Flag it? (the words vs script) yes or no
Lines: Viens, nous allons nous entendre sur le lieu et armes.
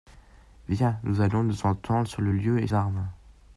no